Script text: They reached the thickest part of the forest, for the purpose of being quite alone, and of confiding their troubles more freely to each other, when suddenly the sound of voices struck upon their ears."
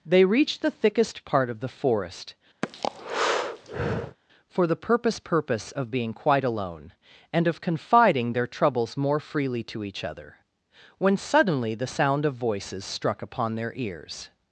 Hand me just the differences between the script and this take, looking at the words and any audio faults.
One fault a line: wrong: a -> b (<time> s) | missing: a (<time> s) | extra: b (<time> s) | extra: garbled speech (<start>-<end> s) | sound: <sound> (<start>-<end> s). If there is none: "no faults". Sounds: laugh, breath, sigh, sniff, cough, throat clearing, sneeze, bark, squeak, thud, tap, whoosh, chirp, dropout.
sound: breath (2.6-4.2 s)
extra: purpose (5.2 s)